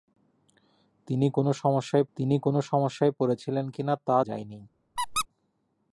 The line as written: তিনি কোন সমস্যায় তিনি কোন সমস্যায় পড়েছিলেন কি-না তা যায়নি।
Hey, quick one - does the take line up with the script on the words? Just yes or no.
yes